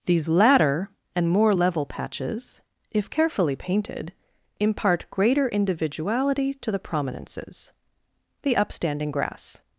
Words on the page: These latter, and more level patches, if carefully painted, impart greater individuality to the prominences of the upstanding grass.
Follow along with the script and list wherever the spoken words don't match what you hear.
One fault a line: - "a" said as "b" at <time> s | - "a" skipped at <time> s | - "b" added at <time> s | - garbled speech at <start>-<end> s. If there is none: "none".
- "of" skipped at 7.7 s